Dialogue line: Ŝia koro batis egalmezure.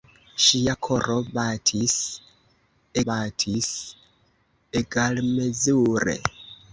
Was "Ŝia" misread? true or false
false